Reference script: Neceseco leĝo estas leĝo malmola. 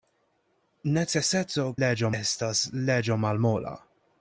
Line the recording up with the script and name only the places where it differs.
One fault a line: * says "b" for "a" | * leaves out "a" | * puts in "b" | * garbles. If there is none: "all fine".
all fine